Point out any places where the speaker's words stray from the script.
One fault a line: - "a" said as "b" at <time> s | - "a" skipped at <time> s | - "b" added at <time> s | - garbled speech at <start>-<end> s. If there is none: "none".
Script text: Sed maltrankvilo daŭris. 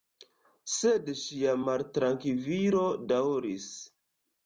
- "ŝia" added at 1.2 s